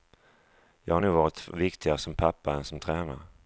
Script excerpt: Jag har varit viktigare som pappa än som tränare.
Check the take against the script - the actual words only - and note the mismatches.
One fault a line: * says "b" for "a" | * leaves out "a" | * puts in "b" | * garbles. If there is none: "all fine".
* puts in "nog"